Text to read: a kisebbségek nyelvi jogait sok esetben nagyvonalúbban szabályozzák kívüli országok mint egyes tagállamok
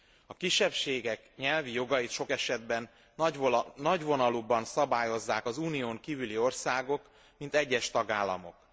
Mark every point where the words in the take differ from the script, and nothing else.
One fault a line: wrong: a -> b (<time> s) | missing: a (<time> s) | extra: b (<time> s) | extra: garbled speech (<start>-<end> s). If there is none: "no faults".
extra: az unión (5.4 s)